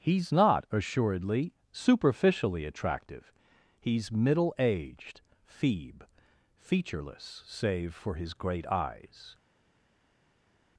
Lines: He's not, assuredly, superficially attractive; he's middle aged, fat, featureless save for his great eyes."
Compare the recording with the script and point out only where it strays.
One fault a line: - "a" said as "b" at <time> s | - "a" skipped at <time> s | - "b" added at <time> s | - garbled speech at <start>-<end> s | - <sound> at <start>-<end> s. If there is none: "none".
- "fat" said as "feeb" at 5.5 s